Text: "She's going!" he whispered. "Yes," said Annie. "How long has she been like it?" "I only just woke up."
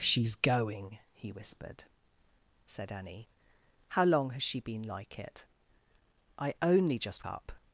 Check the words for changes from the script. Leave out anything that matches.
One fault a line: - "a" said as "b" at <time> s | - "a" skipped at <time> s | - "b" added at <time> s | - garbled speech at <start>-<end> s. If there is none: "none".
- "Yes" skipped at 1.8 s
- "woke" skipped at 7.3 s